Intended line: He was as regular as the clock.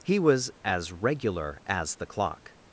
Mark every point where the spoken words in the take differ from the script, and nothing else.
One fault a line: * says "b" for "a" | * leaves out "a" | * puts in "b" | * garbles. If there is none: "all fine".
all fine